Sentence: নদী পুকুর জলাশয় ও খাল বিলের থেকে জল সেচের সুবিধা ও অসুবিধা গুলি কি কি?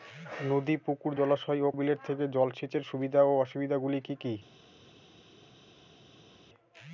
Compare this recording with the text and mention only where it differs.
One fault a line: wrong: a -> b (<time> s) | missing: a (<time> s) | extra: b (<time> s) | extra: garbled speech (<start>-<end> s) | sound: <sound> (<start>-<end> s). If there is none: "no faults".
missing: খাল (1.7 s)